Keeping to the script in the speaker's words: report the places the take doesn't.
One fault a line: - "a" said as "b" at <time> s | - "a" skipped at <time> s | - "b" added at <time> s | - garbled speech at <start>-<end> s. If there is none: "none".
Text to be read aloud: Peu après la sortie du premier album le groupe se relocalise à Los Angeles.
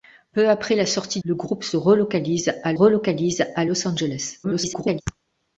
- "du premier album" skipped at 1.2 s
- "relocalise à" added at 2.7 s
- garbled speech at 4.4-5.0 s